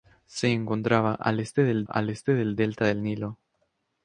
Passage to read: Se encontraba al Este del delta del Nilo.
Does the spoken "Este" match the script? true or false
true